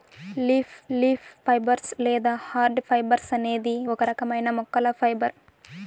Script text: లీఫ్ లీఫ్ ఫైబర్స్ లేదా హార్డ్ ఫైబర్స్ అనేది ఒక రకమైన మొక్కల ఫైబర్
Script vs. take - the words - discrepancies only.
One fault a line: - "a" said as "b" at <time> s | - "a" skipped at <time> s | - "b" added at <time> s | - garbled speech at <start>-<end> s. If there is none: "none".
none